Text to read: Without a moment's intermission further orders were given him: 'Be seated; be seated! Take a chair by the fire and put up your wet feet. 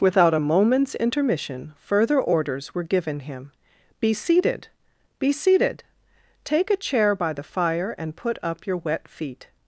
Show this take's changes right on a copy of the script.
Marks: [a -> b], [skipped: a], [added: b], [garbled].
Without a moment's intermission further orders were given him: 'Be seated; be seated! Take a chair by the fire and put up your wet feet.